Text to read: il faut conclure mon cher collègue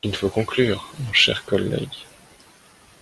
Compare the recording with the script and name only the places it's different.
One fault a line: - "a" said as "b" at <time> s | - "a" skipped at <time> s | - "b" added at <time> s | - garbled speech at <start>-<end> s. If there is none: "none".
none